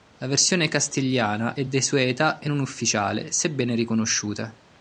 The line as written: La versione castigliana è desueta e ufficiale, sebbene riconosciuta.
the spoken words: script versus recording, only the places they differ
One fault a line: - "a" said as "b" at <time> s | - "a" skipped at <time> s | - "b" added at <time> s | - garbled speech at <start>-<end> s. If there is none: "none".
- "non" added at 2.5 s